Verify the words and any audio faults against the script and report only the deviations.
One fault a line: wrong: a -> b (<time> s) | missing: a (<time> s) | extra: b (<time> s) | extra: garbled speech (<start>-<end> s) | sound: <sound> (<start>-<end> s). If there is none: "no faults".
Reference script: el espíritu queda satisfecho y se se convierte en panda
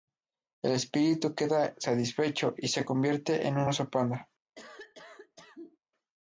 missing: se (2.9 s)
extra: un oso (3.6 s)
sound: cough (4.6-5.8 s)